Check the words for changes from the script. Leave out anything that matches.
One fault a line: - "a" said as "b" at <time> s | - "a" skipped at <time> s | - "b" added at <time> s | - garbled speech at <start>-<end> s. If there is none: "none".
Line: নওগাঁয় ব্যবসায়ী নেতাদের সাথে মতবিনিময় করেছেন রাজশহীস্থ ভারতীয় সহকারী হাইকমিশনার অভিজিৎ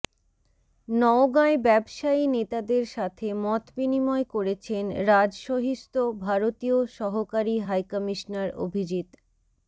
none